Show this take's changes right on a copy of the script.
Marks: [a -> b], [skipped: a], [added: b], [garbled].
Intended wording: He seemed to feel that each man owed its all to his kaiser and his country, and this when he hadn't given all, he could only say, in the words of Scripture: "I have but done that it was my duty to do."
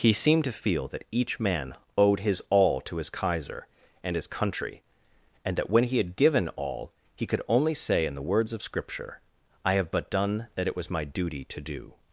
He seemed to feel that each man owed [its -> his] all to his kaiser and his country, and [this -> that] when he [hadn't -> had] given all, he could only say, in the words of Scripture: "I have but done that it was my duty to do."